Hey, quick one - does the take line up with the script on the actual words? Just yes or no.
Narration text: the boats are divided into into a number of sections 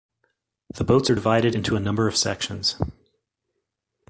no